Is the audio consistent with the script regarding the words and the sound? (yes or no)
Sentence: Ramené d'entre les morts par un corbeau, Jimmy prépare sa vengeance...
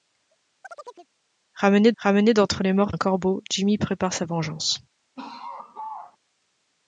no